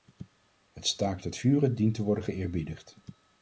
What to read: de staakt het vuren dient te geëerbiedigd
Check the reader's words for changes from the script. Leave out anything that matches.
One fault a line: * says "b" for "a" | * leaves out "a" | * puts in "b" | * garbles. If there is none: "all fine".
* says "het" for "de"
* puts in "worden"